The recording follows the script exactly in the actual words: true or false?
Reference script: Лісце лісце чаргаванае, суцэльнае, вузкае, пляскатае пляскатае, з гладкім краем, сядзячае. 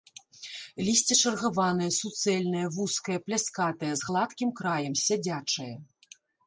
false